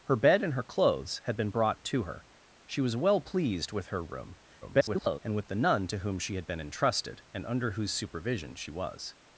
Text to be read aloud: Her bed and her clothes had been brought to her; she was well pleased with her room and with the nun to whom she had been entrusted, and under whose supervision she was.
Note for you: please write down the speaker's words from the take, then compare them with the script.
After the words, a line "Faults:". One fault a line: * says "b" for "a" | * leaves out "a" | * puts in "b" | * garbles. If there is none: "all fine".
Her bed and her clothes had been brought to her; she was well pleased with her room [garbled] and with the nun to whom she had been entrusted, and under whose supervision she was.
Faults:
* garbles